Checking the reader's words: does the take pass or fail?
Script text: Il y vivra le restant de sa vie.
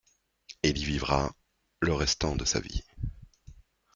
pass